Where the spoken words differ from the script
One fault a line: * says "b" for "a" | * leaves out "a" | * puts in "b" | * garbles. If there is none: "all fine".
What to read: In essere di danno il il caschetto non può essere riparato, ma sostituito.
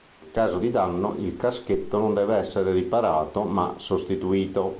* says "caso" for "essere"
* leaves out "il"
* says "deve" for "può"